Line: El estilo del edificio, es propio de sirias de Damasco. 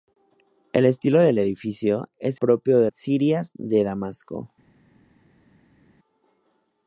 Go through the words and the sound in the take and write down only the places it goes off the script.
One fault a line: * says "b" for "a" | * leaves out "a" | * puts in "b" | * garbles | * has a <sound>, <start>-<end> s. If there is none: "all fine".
all fine